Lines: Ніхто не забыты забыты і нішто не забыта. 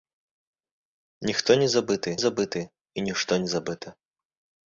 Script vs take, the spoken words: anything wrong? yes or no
no